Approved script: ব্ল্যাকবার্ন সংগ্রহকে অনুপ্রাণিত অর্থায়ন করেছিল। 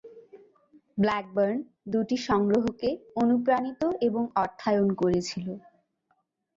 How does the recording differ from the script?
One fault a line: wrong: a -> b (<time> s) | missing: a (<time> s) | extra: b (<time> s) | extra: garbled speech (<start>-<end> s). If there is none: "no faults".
extra: দুটি (1.9 s)
extra: এবং (4.1 s)